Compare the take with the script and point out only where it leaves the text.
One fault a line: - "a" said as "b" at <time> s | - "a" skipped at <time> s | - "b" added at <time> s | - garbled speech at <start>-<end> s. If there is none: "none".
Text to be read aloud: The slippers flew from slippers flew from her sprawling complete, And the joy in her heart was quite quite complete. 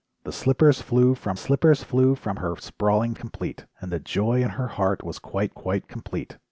none